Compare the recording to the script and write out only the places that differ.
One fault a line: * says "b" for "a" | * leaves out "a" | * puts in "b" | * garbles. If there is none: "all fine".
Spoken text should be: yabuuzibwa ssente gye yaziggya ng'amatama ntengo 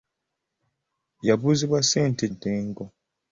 * leaves out "gye yaziggya ng'amatama"